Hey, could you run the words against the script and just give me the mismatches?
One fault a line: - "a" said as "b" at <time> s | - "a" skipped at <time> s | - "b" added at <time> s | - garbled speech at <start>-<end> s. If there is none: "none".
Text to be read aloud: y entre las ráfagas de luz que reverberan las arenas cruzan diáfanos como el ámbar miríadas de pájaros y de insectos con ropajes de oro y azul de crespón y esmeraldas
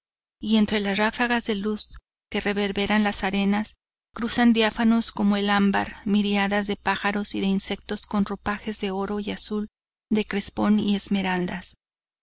none